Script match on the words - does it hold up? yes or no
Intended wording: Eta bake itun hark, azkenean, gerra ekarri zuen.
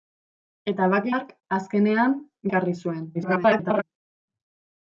no